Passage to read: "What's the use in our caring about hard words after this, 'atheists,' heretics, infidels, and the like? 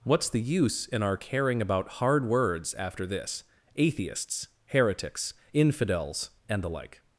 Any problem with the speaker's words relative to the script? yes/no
no